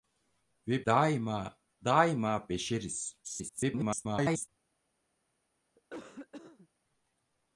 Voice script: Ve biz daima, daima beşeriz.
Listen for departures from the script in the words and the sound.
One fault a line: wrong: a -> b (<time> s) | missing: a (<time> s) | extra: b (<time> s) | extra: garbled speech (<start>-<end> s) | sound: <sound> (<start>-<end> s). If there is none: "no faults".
missing: biz (0.8 s)
extra: garbled speech (3.2-4.5 s)
sound: cough (5.8-6.7 s)